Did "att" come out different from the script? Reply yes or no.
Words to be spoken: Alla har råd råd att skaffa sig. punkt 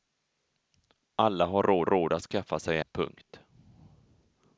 no